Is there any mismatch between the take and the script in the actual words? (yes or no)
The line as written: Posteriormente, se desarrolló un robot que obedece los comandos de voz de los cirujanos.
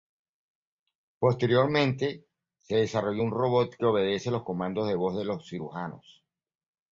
no